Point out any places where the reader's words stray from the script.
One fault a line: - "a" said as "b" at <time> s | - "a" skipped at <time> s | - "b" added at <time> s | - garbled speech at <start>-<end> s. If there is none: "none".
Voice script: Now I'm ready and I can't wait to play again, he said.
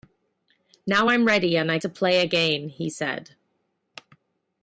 - "can't wait" skipped at 1.8 s